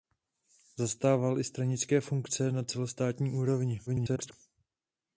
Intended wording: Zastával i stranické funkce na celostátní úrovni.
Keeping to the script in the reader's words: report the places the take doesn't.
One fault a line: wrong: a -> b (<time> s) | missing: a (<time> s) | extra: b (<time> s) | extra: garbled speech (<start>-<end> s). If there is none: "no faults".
extra: garbled speech (3.9-4.3 s)